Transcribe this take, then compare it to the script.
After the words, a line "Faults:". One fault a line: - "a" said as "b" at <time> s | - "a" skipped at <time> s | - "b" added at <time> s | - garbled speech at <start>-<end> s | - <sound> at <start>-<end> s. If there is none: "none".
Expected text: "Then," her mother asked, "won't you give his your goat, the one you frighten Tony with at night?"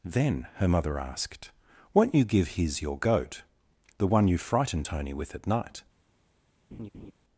"Then," her mother asked, "won't you give his your goat, the one you frighten Tony with at night?"
Faults:
- laugh at 6.7-7.1 s